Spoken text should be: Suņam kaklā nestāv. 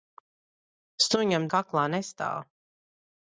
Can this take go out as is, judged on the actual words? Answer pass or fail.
pass